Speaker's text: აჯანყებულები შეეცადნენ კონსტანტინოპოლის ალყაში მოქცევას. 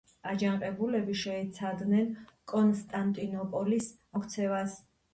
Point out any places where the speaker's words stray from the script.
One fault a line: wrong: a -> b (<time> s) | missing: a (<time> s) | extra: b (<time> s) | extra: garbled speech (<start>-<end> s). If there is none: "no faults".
missing: ალყაში (3.9 s)